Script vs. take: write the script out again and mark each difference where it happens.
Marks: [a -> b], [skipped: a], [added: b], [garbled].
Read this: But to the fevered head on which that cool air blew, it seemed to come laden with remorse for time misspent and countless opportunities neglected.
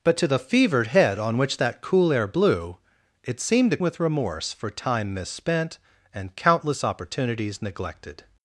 But to the fevered head on which that cool air blew, it seemed to [skipped: come laden] with remorse for time misspent and countless opportunities neglected.